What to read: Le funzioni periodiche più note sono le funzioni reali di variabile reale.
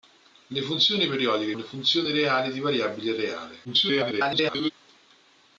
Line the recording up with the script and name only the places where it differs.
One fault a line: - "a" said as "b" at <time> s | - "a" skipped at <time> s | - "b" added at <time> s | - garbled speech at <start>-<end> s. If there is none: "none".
- "più note sono" skipped at 1.6 s
- garbled speech at 3.6-4.7 s